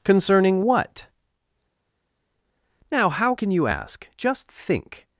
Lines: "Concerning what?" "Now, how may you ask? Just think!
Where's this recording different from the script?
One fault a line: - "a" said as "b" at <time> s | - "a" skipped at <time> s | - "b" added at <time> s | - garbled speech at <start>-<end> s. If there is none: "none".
- "may" said as "can" at 3.3 s